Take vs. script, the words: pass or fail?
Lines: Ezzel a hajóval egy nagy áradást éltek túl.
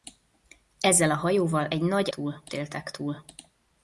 fail